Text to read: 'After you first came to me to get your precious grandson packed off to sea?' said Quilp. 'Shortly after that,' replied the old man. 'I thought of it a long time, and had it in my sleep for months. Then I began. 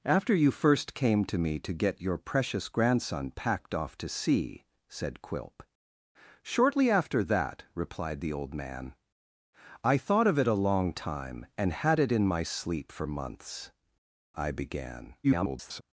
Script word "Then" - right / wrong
wrong